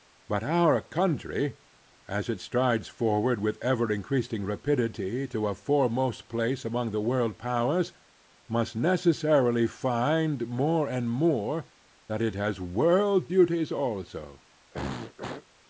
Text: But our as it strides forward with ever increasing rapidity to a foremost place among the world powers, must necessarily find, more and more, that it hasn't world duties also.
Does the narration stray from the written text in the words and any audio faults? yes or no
yes